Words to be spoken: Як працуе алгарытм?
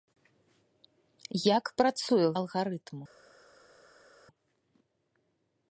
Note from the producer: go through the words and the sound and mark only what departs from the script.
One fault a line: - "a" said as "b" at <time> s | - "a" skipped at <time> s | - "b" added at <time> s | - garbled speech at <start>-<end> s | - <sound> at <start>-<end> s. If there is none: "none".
none